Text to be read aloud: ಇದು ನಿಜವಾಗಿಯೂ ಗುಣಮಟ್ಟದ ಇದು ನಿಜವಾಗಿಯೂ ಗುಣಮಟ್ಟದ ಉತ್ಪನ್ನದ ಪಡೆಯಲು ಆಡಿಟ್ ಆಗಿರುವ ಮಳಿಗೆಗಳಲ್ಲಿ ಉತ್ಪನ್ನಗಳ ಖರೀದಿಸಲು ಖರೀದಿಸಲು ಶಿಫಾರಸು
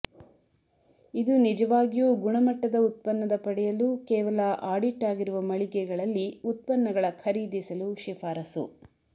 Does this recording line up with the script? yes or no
no